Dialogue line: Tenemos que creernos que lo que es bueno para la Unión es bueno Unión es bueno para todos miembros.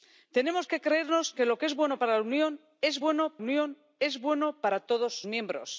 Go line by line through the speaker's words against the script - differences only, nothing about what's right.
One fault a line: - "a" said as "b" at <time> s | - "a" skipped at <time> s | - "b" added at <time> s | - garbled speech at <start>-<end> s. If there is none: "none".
none